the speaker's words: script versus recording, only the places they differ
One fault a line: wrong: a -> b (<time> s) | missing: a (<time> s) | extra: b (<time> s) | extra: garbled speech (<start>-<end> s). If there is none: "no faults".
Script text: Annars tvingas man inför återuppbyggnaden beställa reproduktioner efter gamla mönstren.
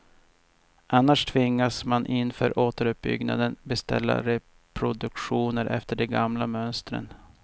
extra: de (6.0 s)